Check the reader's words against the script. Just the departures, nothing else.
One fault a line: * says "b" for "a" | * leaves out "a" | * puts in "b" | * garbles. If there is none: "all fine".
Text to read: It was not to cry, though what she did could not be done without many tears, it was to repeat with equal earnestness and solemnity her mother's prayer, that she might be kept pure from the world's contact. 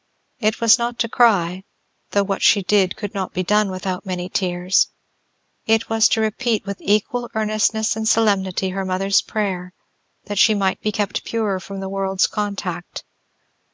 all fine